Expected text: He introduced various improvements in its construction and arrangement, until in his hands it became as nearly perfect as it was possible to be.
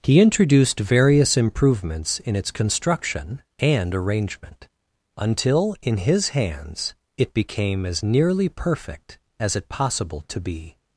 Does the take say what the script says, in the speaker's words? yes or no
no